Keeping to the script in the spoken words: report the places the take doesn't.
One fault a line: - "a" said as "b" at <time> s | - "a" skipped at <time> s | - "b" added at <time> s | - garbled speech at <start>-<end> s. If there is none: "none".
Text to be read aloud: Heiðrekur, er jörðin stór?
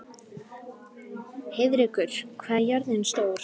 - "hvað" added at 2.4 s